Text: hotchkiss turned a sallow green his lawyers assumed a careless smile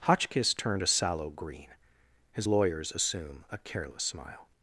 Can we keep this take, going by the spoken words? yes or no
no